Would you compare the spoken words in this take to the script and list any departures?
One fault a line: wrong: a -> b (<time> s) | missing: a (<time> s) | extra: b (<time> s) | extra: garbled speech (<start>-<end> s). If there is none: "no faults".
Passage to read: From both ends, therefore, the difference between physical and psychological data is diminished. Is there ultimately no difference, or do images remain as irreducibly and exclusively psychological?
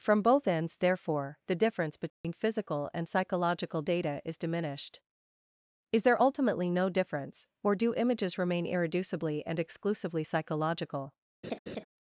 missing: as (8.7 s)